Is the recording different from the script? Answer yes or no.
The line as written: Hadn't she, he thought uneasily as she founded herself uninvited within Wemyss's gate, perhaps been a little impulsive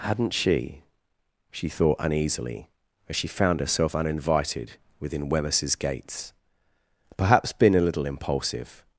yes